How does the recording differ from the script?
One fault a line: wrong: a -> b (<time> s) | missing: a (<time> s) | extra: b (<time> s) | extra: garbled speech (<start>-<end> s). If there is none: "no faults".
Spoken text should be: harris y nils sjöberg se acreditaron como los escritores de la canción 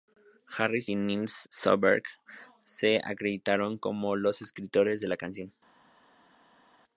no faults